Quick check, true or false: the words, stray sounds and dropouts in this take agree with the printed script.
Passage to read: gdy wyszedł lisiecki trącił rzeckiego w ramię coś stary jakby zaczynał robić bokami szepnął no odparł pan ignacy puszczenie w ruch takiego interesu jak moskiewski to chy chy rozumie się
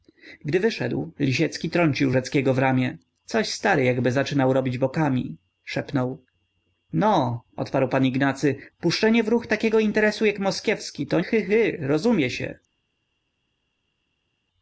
true